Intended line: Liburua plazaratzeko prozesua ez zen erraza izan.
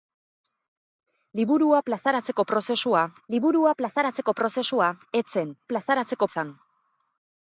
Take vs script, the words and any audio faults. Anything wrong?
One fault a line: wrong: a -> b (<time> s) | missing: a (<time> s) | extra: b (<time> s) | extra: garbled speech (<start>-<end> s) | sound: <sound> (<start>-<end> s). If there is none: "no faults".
extra: liburua plazaratzeko prozesua (3.3 s)
wrong: erraza -> plazaratzeko (5.7 s)